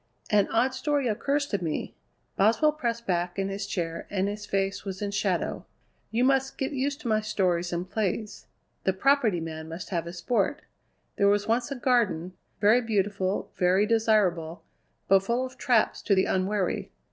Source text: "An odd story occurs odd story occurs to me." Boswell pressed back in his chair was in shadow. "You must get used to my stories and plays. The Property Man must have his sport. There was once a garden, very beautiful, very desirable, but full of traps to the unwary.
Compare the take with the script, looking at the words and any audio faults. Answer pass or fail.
fail